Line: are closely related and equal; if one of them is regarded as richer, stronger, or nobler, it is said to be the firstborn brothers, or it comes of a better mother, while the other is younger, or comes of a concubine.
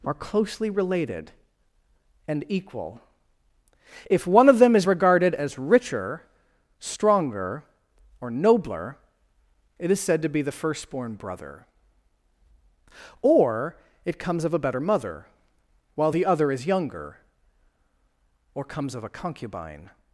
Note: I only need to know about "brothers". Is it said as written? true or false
false